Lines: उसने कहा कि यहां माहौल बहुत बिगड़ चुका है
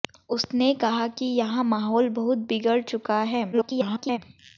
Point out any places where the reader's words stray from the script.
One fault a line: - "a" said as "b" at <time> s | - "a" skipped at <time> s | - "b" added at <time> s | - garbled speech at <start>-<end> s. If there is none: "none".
- garbled speech at 3.5-4.2 s